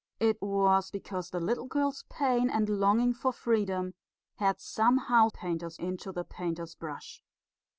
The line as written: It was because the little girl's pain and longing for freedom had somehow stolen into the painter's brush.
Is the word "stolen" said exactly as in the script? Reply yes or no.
no